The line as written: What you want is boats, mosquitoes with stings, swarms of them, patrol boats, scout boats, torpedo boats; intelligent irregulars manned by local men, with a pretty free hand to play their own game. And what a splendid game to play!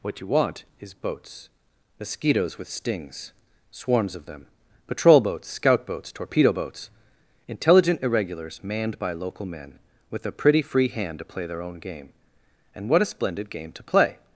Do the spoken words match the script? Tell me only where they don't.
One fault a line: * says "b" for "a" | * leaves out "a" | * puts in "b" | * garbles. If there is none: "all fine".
all fine